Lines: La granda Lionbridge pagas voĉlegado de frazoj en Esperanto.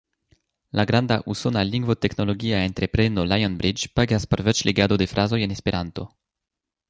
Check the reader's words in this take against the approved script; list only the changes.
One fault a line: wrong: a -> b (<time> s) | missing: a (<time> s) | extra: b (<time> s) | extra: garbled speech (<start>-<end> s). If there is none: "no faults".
extra: usona lingvoteknologia entrepreno (1.3 s)
extra: por (4.3 s)